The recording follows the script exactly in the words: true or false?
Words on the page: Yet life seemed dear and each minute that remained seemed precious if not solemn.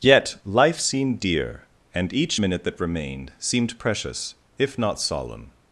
true